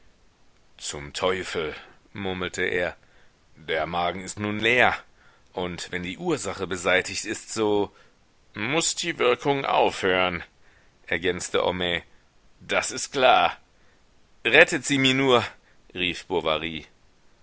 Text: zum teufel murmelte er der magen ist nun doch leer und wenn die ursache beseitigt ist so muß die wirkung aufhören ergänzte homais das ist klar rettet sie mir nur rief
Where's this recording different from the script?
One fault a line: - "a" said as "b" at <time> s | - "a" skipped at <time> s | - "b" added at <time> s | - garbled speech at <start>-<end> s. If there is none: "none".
- "doch" skipped at 4.6 s